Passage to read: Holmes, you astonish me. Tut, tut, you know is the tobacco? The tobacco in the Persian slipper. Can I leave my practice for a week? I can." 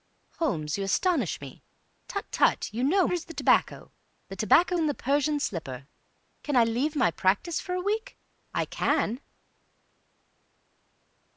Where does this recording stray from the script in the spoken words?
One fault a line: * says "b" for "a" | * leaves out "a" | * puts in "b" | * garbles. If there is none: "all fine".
all fine